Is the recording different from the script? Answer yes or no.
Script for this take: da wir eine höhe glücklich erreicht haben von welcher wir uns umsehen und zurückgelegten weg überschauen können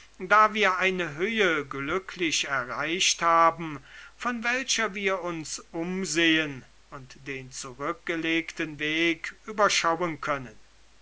yes